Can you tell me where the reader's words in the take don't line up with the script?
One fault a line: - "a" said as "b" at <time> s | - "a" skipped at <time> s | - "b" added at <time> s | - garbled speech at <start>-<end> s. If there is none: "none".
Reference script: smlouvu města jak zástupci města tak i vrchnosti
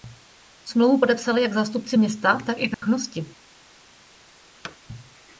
- "města" said as "podepsali" at 1.0 s